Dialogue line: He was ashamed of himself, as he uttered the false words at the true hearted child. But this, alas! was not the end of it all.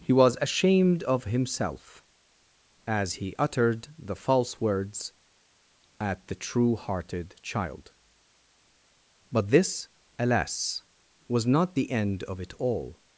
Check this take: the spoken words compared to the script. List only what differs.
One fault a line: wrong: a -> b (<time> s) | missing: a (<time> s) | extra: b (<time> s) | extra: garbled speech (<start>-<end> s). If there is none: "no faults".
no faults